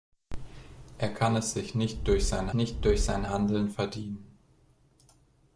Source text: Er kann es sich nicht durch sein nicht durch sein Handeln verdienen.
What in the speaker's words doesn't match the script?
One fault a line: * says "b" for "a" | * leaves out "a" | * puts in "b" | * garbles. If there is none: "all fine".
all fine